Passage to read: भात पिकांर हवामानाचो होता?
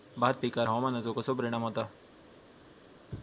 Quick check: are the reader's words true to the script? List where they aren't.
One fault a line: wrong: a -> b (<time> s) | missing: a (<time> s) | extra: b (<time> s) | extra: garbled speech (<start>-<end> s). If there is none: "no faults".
extra: कसो परिणाम (1.1 s)